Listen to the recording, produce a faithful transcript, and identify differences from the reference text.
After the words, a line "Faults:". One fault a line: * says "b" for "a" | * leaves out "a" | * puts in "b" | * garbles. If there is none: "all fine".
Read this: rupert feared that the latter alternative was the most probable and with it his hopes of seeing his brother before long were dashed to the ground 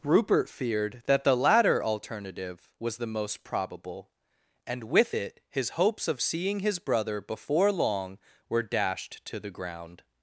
rupert feared that the latter alternative was the most probable and with it his hopes of seeing his brother before long were dashed to the ground
Faults:
all fine